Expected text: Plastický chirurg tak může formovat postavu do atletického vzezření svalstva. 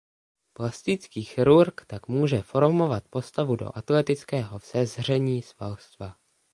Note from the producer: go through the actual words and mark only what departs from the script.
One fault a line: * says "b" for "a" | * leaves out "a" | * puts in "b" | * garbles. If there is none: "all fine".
all fine